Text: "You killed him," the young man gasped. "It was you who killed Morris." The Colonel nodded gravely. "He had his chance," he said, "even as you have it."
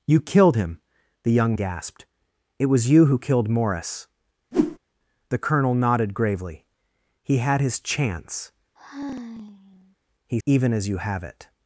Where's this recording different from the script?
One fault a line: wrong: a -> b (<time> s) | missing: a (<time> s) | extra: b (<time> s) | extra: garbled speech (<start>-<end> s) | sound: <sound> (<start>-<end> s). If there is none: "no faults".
missing: man (1.6 s)
sound: whoosh (4.5-4.8 s)
sound: sigh (8.8-10.0 s)
missing: said (10.4 s)